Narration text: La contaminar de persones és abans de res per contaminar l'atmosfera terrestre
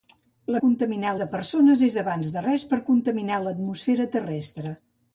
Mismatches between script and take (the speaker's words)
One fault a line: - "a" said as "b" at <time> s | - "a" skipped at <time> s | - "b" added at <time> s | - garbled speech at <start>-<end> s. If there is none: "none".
none